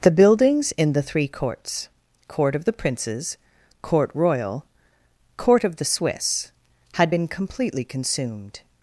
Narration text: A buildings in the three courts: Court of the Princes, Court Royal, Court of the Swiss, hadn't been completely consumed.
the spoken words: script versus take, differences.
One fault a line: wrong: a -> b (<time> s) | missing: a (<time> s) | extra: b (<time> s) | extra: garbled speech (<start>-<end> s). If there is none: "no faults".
wrong: A -> The (0.0 s)
wrong: hadn't -> had (6.9 s)